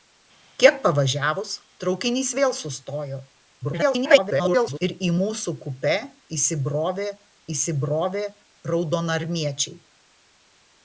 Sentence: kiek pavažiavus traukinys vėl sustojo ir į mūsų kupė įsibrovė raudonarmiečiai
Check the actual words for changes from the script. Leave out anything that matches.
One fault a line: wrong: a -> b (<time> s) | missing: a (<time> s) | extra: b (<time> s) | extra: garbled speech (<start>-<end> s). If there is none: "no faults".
extra: garbled speech (3.6-4.8 s)
extra: įsibrovė (7.6 s)